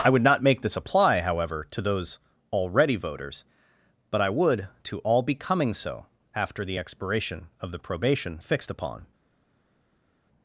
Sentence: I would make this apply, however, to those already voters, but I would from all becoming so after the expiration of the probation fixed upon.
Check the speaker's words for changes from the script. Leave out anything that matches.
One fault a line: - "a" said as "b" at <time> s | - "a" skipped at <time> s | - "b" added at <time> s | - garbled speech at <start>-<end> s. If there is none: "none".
- "not" added at 0.2 s
- "from" said as "to" at 4.8 s